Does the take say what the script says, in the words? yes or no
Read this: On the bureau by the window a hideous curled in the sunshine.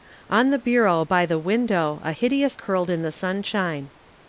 yes